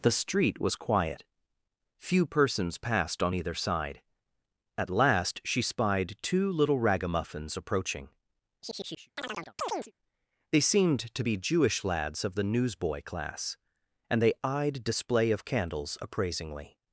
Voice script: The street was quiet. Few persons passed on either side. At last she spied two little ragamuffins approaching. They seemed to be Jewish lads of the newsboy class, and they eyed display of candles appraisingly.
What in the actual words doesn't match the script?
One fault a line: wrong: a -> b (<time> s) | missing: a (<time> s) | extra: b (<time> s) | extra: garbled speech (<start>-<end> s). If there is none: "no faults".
no faults